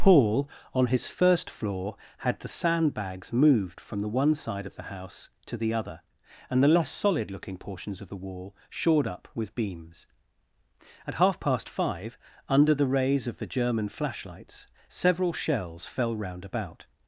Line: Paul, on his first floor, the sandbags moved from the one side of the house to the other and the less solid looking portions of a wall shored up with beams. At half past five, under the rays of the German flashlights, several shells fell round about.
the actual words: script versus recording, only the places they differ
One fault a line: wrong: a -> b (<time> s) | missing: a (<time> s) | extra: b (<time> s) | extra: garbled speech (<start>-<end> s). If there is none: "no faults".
extra: had (2.2 s)
wrong: a -> the (8.1 s)